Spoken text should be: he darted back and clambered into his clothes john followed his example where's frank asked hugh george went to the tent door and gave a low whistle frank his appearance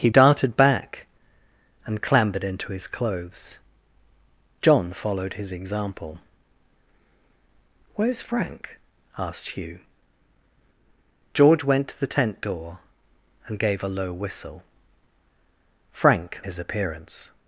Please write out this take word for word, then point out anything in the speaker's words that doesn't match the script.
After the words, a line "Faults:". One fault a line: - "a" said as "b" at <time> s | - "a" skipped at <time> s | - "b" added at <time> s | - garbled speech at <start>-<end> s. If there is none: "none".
he darted back and clambered into his clothes john followed his example where's frank asked hugh george went to the tent door and gave a low whistle frank his appearance
Faults:
none